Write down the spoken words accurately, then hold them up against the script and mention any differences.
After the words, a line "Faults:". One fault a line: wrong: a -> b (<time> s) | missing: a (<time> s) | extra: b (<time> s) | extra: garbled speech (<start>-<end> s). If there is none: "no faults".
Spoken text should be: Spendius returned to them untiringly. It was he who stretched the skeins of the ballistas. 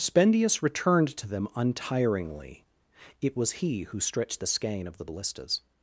Spendius returned to them untiringly. It was he who stretched the skein of the ballistas.
Faults:
wrong: skeins -> skein (4.5 s)